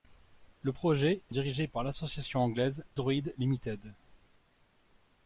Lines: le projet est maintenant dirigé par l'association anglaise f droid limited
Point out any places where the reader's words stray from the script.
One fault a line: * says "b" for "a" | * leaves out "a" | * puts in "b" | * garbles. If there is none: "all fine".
* leaves out "maintenant"
* leaves out "f"